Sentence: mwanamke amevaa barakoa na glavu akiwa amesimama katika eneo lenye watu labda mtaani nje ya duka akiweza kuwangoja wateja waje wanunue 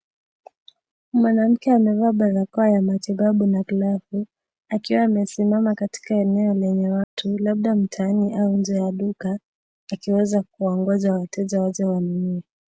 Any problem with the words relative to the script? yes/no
yes